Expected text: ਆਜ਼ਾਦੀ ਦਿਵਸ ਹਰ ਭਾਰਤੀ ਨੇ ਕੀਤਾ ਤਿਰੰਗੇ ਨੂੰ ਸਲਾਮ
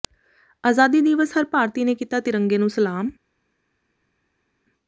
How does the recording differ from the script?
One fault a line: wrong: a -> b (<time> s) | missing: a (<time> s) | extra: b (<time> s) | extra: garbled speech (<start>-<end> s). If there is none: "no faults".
no faults